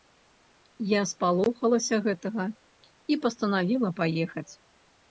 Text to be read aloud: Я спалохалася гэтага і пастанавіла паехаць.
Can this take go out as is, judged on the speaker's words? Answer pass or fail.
pass